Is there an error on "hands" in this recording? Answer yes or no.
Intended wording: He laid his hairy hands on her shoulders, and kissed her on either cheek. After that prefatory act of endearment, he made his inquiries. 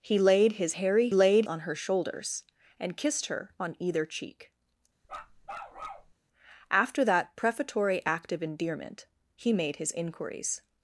yes